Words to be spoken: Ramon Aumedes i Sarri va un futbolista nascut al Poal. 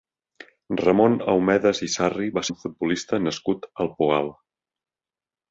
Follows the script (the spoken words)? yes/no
yes